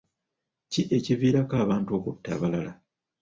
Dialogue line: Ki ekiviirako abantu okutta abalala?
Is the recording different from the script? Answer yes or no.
no